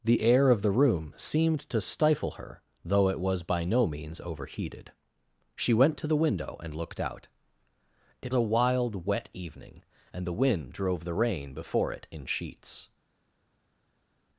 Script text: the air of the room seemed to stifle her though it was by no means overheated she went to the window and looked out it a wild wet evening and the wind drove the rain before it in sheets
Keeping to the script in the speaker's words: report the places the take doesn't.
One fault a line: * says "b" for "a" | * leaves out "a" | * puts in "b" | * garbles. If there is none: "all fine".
all fine